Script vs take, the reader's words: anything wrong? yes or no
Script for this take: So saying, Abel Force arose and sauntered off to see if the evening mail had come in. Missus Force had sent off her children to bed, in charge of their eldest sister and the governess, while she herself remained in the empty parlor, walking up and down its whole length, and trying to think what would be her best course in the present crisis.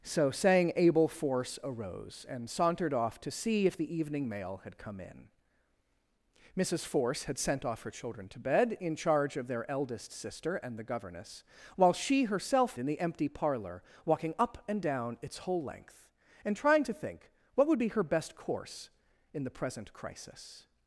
yes